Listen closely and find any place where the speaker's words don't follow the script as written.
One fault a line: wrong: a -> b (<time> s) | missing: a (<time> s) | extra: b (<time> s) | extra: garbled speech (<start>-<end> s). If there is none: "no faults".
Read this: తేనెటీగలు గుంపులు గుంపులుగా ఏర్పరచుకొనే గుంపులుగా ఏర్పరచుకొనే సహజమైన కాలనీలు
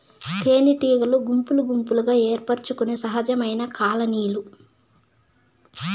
missing: గుంపులుగా ఏర్పరచుకొనే (3.0 s)